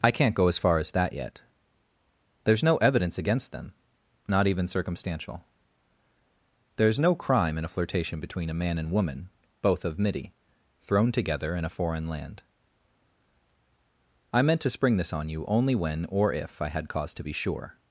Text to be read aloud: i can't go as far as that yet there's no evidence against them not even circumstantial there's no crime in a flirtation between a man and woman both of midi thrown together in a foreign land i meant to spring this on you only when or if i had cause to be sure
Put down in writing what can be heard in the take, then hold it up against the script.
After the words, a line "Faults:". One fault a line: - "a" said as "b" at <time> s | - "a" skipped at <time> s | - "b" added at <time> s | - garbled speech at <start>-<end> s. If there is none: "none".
i can't go as far as that yet there's no evidence against them not even circumstantial there's no crime in a flirtation between a man and woman both of midi thrown together in a foreign land i meant to spring this on you only when or if i had cause to be sure
Faults:
none